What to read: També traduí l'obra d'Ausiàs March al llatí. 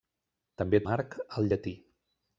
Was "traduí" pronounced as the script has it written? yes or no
no